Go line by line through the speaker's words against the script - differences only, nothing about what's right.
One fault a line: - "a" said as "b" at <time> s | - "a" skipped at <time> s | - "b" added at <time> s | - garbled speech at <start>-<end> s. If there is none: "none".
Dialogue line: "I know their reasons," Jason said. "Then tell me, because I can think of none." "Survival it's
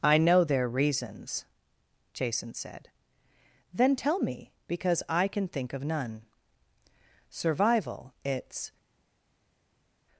none